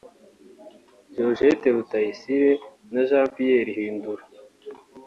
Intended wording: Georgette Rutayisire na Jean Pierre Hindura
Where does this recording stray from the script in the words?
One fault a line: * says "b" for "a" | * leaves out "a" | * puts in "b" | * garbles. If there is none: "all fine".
all fine